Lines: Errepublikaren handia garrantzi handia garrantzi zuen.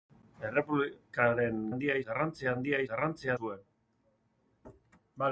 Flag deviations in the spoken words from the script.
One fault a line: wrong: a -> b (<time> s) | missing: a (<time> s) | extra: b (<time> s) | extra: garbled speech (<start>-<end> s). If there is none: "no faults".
no faults